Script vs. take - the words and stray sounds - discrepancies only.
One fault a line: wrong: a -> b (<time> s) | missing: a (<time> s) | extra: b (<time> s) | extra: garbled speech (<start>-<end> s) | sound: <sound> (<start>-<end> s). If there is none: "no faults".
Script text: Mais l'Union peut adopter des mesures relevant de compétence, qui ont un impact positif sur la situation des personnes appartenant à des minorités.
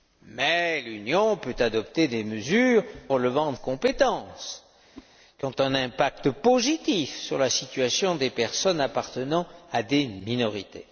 sound: whoosh (4.9-5.1 s)